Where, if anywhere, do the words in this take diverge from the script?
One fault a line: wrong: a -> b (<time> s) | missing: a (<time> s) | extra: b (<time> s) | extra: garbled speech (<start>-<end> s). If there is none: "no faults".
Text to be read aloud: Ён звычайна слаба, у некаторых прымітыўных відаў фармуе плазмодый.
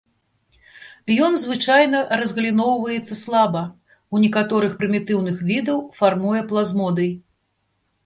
extra: разгаліноўваецца (2.2 s)